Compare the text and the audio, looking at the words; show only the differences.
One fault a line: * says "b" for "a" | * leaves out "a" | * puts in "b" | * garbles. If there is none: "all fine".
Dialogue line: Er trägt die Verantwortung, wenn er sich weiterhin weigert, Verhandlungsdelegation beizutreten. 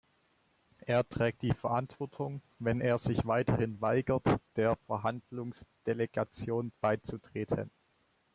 * puts in "der"